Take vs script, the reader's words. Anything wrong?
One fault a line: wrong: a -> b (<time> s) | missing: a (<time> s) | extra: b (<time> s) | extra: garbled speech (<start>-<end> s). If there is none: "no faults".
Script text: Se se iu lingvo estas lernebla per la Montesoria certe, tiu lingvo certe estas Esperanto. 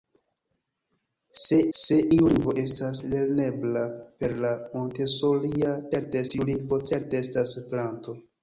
no faults